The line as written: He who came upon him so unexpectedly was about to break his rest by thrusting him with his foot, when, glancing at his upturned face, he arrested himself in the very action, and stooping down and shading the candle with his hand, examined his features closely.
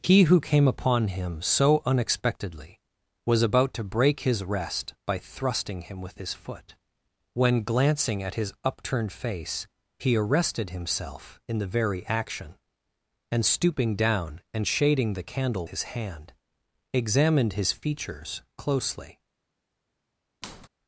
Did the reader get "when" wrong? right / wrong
right